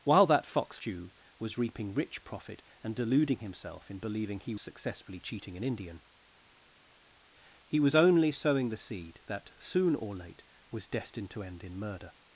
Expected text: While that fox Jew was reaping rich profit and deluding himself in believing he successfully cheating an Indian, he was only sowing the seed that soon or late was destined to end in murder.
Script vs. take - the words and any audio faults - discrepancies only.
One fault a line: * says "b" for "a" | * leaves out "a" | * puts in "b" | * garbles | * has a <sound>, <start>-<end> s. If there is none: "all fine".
all fine